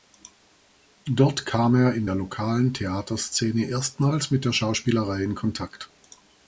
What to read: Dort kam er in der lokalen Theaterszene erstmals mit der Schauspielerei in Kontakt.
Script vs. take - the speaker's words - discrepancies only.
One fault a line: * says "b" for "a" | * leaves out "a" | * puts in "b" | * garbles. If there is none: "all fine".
all fine